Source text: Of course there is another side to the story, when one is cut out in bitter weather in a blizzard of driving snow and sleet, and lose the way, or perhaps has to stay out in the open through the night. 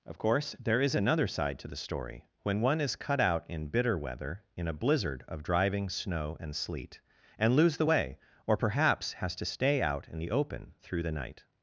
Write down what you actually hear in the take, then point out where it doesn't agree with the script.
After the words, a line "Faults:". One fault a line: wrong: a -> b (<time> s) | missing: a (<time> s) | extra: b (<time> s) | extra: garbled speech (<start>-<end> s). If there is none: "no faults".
Of course there is another side to the story, when one is cut out in bitter weather in a blizzard of driving snow and sleet, and lose the way, or perhaps has to stay out in the open through the night.
Faults:
no faults